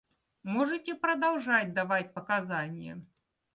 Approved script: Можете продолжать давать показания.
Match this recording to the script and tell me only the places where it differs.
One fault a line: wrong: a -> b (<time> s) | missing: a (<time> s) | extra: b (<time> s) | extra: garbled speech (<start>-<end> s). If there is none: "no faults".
no faults